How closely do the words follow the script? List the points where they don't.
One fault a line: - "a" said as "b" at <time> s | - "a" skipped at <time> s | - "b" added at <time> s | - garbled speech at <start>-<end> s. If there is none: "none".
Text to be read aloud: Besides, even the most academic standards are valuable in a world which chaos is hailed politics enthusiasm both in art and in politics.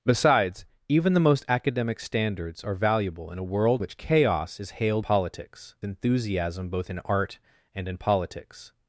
none